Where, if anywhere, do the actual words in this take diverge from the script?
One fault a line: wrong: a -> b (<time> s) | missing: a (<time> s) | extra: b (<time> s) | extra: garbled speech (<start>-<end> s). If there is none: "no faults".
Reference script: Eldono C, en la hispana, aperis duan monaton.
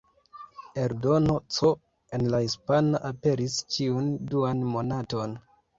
extra: ĉiun (3.8 s)